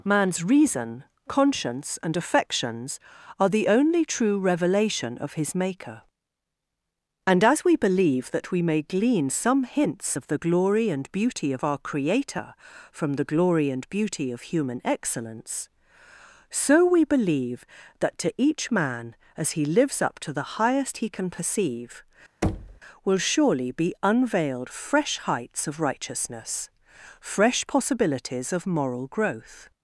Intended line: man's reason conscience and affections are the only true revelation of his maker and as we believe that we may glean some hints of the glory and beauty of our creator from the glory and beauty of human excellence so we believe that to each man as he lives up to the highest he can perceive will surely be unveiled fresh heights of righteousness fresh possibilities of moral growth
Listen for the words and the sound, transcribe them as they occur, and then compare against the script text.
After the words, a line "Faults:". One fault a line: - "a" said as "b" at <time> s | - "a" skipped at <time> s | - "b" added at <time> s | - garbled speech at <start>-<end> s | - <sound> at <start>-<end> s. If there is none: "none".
man's reason conscience and affections are the only true revelation of his maker and as we believe that we may glean some hints of the glory and beauty of our creator from the glory and beauty of human excellence so we believe that to each man as he lives up to the highest he can perceive will surely be unveiled fresh heights of righteousness fresh possibilities of moral growth
Faults:
- thud at 22.4-22.8 s